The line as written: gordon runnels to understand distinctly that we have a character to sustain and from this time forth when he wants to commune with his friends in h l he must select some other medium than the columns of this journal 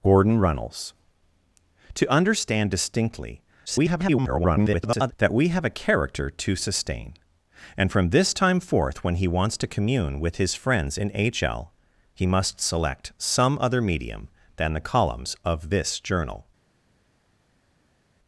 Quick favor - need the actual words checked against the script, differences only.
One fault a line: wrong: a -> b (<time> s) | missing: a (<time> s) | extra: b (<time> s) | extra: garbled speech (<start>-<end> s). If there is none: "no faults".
extra: garbled speech (3.7-5.1 s)